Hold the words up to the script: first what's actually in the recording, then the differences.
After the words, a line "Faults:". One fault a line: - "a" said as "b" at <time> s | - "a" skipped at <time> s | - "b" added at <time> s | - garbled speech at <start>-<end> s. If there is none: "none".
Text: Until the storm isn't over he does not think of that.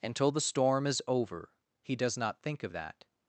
Until the storm is over he does not think of that.
Faults:
- "isn't" said as "is" at 0.9 s